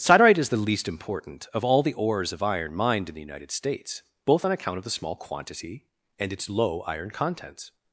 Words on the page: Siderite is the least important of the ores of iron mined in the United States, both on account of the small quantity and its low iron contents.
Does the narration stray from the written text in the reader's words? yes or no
yes